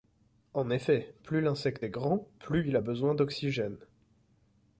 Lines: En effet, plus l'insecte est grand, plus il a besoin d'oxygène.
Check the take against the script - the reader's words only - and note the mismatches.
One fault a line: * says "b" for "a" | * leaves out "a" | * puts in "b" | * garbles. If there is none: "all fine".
all fine